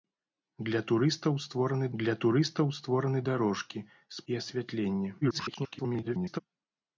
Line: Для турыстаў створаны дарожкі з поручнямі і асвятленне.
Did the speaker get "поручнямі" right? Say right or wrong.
wrong